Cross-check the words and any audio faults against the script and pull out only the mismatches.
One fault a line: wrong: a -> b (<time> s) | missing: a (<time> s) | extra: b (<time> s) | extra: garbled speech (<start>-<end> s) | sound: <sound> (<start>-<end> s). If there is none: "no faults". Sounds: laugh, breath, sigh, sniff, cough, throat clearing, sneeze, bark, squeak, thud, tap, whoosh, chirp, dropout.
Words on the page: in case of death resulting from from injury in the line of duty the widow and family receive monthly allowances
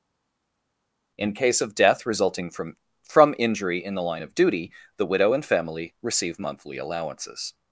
no faults